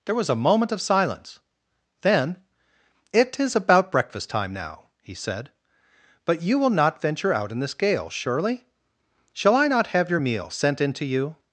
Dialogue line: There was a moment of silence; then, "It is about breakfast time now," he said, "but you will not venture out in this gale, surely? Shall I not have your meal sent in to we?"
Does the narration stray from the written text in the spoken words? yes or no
yes